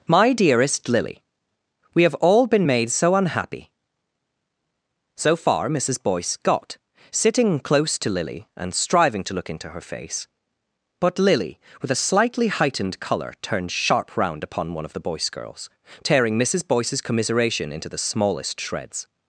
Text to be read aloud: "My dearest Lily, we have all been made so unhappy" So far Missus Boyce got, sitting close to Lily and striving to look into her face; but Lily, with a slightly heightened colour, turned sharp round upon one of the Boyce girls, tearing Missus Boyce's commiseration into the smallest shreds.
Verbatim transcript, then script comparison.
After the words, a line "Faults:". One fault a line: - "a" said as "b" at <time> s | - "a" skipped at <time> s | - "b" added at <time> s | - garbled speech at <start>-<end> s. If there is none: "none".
"My dearest Lily, we have all been made so unhappy" So far Missus Boyce got, sitting close to Lily and striving to look into her face; but Lily, with a slightly heightened colour, turned sharp round upon one of the Boyce girls, tearing Missus Boyce's commiseration into the smallest shreds.
Faults:
none